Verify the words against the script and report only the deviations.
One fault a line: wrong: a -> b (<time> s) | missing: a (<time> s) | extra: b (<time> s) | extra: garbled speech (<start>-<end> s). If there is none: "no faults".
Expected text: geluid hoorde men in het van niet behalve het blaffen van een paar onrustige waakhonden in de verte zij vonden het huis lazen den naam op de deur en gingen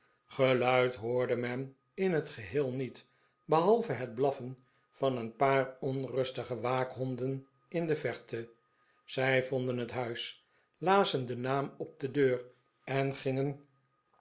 wrong: van -> geheel (2.3 s)